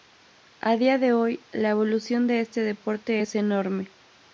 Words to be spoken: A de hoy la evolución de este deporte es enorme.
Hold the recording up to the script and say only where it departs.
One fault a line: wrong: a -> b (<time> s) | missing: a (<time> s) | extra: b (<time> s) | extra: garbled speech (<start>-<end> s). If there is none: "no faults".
extra: día (0.8 s)